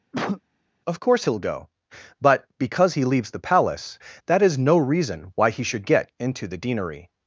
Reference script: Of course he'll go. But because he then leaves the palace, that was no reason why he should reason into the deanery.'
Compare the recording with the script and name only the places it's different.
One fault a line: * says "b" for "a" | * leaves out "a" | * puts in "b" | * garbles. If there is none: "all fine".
* leaves out "then"
* says "is" for "was"
* says "get" for "reason"